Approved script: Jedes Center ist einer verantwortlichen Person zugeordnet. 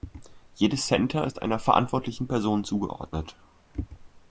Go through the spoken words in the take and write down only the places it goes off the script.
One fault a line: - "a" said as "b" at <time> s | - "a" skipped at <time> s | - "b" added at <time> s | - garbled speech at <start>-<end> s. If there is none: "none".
none